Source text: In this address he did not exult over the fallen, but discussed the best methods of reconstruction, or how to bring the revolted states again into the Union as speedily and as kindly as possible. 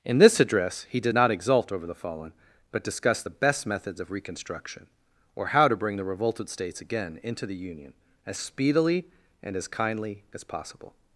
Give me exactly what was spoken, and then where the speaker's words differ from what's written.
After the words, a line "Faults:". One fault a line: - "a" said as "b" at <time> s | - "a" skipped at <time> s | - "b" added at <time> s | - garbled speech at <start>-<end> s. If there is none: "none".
In this address he did not exult over the fallen, but discussed the best methods of reconstruction, or how to bring the revolted states again into the Union as speedily and as kindly as possible.
Faults:
none